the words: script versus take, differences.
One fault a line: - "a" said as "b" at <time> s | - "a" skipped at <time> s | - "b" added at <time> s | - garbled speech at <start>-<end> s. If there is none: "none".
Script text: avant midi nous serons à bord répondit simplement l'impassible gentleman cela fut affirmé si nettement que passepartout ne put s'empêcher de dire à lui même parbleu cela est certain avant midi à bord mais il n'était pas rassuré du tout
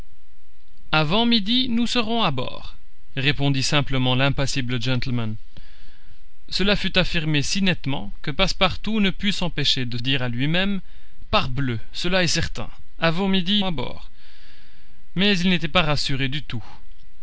none